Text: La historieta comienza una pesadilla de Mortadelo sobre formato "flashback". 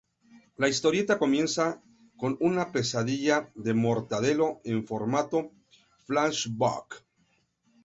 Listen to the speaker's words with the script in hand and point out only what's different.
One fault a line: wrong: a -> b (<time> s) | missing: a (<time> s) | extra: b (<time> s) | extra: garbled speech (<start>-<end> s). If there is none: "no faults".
extra: con (2.1 s)
wrong: sobre -> en (4.6 s)